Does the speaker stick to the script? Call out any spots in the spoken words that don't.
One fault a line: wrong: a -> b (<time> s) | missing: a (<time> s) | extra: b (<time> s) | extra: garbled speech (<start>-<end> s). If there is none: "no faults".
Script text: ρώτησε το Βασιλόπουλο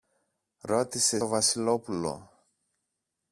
no faults